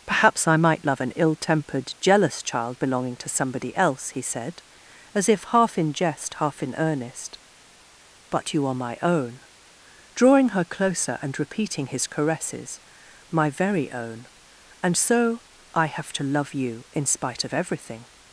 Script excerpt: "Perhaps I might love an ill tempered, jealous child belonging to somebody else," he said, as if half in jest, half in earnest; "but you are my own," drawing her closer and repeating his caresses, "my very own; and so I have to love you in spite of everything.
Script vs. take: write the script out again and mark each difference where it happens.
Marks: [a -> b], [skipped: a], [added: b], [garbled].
"Perhaps I might love an ill tempered, jealous child belonging to somebody else," he said, as if half in jest, half in earnest; "but you are my own," drawing her closer and repeating his caresses, "my very own; and so I have to love you in spite of everything.